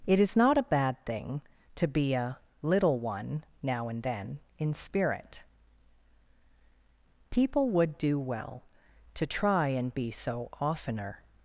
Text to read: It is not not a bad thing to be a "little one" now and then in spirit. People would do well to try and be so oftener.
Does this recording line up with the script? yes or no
no